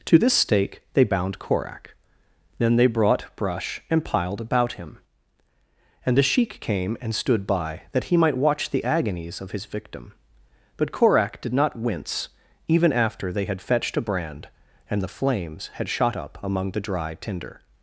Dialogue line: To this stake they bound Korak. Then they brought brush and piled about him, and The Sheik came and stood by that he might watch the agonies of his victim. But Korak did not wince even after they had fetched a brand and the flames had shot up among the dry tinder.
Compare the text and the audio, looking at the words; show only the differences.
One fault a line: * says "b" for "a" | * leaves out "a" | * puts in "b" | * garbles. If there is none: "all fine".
all fine